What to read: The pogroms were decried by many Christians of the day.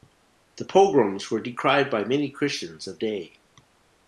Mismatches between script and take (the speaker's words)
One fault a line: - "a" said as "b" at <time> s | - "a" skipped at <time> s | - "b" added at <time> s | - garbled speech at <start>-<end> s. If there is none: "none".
- "the" skipped at 3.0 s